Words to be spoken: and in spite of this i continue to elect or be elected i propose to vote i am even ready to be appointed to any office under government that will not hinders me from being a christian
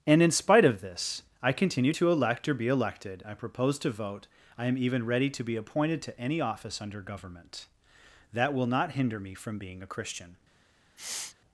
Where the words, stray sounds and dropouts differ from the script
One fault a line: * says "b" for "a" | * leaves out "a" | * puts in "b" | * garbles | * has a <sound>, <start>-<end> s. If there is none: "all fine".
* says "hinder" for "hinders"
* has a sniff, 11.0-11.4 s